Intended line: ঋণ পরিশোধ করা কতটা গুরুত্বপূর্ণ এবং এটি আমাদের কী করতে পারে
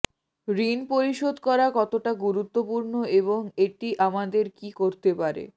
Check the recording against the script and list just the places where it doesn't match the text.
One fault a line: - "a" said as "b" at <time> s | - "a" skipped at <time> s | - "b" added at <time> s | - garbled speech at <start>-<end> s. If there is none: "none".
none